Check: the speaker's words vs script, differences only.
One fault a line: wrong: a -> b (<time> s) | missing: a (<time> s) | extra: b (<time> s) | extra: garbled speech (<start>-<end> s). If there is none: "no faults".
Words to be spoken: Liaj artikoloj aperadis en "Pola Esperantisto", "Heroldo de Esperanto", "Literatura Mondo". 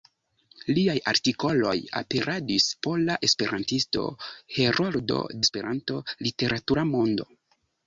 missing: en (2.6 s)
missing: de (5.2 s)